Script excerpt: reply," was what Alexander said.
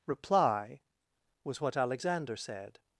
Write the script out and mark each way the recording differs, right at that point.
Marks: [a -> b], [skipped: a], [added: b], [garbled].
reply," was what Alexander said.